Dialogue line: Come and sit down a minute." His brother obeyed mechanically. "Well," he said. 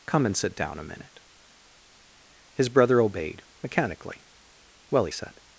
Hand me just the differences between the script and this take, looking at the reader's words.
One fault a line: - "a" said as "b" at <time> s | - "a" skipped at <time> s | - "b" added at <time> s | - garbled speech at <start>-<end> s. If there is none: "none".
none